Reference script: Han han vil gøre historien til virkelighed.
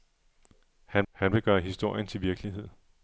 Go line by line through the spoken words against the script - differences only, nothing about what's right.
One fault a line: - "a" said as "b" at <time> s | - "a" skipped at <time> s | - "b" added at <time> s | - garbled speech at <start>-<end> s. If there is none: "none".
none